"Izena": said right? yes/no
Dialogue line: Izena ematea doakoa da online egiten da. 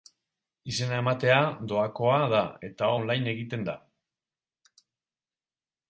yes